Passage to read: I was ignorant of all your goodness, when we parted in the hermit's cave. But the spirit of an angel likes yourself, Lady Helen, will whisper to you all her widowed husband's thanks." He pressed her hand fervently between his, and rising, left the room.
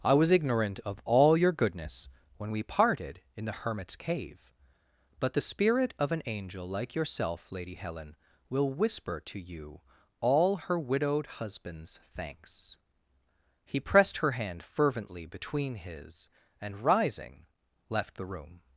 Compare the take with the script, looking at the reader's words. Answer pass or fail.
fail